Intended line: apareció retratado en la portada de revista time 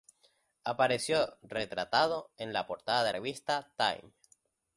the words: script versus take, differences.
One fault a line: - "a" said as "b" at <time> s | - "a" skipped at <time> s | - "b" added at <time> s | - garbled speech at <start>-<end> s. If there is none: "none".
none